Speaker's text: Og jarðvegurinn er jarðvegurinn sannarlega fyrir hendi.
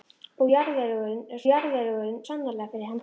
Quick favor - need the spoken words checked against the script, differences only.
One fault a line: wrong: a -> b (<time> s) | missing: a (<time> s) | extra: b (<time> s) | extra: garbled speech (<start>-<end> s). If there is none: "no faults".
no faults